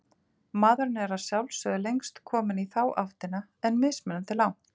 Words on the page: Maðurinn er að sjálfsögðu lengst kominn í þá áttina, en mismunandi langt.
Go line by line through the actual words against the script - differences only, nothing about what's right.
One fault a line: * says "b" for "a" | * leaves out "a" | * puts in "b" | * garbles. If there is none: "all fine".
all fine